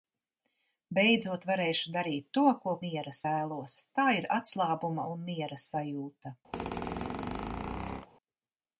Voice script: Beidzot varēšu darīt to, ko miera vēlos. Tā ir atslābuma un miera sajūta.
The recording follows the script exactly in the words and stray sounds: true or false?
false